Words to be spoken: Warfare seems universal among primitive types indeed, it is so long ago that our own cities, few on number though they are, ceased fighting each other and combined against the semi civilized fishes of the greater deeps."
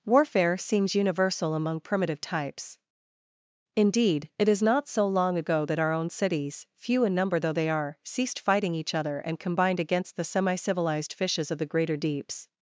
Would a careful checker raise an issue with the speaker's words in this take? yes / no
yes